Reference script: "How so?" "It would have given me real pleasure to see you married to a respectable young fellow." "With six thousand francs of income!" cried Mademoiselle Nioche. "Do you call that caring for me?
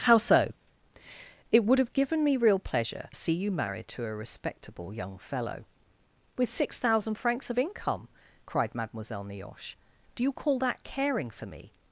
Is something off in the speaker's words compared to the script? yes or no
yes